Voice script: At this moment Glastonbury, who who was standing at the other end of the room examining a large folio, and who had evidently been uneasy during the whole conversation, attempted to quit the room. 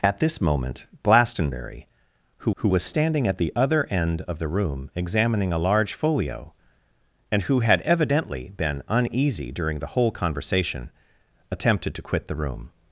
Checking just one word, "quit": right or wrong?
right